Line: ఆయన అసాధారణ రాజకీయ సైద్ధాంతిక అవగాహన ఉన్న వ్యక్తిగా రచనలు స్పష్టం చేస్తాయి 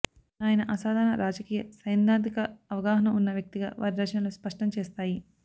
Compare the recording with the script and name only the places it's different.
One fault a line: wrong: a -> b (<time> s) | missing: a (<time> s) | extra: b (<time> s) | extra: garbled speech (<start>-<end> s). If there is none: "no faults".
extra: వారి (3.8 s)